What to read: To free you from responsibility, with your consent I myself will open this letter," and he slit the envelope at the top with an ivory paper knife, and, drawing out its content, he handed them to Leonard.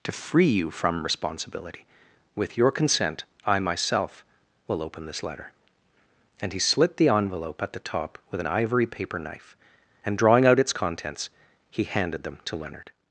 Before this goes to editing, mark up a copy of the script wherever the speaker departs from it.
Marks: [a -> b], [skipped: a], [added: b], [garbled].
To free you from responsibility, with your consent I myself will open this letter," and he slit the envelope at the top with an ivory paper knife, and, drawing out its [content, -> contents] he handed them to Leonard.